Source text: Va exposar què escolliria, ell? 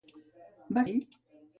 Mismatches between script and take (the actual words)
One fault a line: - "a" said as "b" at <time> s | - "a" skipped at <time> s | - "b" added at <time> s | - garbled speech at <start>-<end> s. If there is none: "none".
- "exposar què escolliria" skipped at 0.8 s